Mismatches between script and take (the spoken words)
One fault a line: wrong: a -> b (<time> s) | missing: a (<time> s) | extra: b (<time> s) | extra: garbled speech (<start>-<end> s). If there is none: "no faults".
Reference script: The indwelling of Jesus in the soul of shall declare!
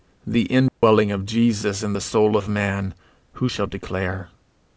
extra: man who (2.5 s)